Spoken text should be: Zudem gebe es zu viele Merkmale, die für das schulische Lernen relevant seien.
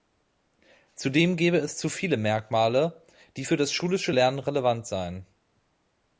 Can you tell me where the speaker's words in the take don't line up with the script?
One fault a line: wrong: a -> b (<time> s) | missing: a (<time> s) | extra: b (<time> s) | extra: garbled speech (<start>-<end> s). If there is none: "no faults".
no faults